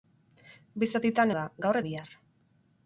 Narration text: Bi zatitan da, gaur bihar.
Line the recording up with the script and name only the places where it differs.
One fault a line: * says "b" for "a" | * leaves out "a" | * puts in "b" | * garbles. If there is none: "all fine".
all fine